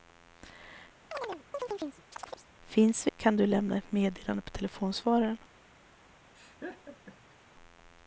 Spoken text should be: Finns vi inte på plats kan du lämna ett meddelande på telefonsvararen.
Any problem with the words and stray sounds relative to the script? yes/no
yes